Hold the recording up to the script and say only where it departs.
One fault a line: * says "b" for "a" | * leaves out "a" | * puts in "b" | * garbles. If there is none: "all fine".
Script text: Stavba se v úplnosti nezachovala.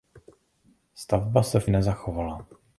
* leaves out "úplnosti"